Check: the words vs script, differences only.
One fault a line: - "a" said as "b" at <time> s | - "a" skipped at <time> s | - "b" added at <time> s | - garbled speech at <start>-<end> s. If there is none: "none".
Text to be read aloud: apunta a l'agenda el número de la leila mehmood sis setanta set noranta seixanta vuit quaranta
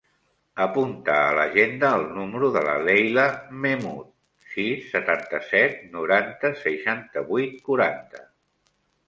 none